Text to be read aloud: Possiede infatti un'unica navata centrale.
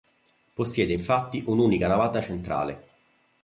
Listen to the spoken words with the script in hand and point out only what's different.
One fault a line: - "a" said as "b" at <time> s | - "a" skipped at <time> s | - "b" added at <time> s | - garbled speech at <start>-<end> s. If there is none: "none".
none